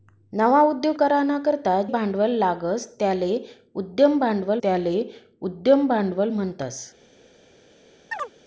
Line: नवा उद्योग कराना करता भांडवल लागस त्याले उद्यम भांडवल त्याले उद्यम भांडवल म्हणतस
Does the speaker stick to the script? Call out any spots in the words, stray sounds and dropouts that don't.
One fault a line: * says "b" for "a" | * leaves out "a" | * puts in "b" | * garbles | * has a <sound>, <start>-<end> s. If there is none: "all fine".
* has a chirp, 8.1-8.3 s